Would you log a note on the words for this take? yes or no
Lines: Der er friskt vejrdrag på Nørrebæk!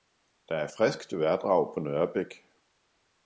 no